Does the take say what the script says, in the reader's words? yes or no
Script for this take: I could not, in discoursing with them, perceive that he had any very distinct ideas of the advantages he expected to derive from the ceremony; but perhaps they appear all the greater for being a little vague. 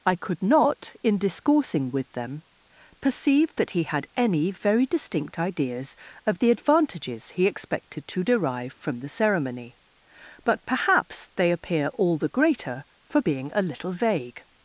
yes